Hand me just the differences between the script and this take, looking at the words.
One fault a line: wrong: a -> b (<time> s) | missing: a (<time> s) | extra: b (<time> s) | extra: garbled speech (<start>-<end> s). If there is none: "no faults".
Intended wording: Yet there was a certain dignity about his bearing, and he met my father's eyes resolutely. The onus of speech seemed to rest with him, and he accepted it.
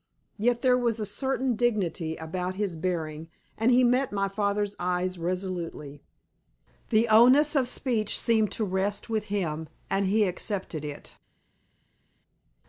no faults